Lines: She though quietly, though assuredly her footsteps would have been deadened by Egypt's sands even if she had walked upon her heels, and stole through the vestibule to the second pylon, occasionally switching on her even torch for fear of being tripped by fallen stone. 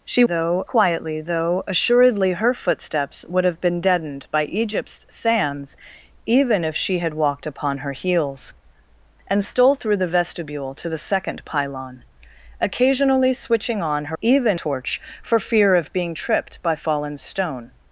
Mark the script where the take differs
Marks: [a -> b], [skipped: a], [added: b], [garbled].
She though quietly, though assuredly her footsteps would have been deadened by Egypt's sands even if she had walked upon her heels, and stole through the vestibule to the second pylon, occasionally switching on her even torch for fear of being tripped by fallen stone.